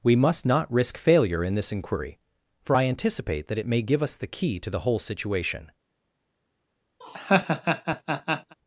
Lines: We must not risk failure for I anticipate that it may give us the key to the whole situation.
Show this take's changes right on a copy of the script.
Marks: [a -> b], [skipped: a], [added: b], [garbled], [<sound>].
We must not risk failure [added: in this inquiry] for I anticipate that it may give us the key to the whole situation. [laugh]